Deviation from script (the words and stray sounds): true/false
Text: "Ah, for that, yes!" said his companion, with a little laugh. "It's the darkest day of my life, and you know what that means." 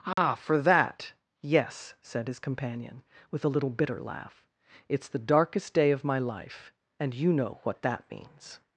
true